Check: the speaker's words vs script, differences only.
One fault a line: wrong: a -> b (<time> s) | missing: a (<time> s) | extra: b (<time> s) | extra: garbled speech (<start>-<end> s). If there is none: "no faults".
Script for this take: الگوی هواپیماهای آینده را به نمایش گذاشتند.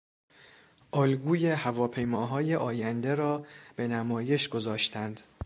no faults